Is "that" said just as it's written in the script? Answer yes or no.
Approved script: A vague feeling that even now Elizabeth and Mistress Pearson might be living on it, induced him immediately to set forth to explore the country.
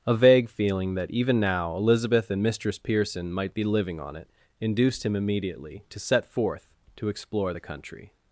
yes